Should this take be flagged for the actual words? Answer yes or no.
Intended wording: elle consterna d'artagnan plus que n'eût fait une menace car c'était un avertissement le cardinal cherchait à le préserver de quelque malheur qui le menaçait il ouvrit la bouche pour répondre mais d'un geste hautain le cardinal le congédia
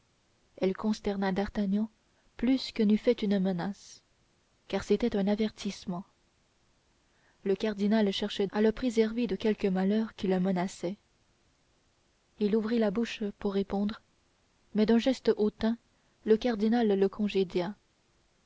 no